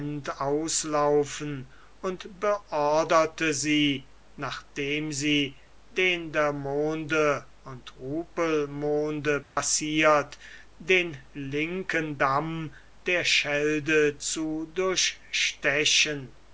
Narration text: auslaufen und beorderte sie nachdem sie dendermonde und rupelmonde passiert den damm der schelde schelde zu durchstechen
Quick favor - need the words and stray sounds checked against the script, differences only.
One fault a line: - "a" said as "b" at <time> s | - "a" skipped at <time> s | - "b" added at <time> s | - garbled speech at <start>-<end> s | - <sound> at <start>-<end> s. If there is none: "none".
- dropout at 9.4-9.6 s
- "linken" added at 11.3 s
- "schelde" skipped at 14.2 s